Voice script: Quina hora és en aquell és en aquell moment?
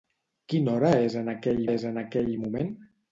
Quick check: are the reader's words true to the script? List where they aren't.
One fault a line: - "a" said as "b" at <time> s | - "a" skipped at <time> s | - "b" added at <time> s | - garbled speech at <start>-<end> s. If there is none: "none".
none